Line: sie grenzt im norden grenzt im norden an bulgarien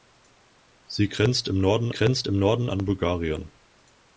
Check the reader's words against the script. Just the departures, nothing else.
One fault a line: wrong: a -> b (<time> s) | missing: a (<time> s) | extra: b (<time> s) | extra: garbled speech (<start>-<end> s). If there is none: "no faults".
no faults